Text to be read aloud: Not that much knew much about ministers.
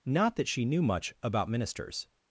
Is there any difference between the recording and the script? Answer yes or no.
yes